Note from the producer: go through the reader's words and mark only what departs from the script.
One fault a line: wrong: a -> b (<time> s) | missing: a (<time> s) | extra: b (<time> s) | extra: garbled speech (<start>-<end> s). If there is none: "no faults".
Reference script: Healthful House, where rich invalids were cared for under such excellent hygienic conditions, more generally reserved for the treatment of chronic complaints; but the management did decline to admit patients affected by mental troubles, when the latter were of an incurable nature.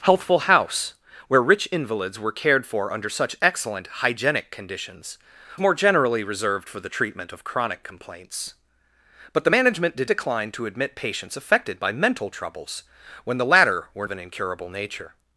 no faults